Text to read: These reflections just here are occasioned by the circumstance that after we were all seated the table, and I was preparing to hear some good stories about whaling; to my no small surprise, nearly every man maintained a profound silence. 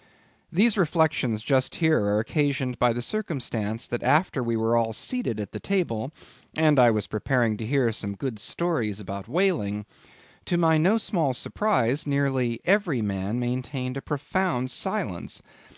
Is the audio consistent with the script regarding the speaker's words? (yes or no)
no